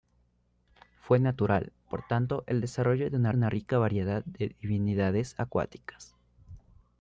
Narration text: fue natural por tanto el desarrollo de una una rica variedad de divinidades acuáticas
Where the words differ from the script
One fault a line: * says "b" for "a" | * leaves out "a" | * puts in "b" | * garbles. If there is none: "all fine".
all fine